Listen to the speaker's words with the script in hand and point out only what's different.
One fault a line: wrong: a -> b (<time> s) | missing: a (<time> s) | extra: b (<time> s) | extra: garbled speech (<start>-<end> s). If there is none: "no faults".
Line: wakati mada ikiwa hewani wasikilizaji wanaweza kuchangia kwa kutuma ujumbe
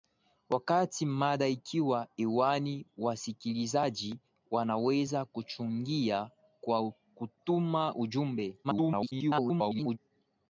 extra: garbled speech (8.6-10.0 s)